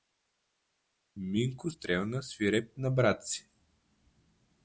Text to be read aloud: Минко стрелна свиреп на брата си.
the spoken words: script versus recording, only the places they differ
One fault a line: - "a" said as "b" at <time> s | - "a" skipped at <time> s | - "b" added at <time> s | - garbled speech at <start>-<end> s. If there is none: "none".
none